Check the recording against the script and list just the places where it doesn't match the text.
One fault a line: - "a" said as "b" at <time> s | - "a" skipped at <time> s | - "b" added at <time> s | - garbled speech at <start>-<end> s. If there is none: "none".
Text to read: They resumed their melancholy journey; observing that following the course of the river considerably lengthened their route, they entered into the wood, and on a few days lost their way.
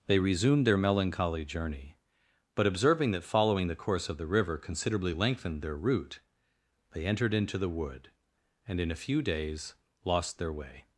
- "but" added at 2.5 s
- "on" said as "in" at 8.8 s